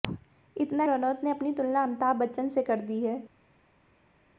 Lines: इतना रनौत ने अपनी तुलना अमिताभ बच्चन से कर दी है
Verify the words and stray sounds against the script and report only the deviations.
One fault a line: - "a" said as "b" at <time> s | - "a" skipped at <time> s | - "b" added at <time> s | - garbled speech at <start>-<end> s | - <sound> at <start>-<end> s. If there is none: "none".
none